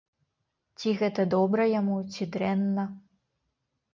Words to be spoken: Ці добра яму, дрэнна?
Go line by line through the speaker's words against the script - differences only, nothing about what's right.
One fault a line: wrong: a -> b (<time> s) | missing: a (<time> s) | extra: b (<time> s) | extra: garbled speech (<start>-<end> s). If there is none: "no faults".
extra: гэта (1.0 s)
extra: ці (2.1 s)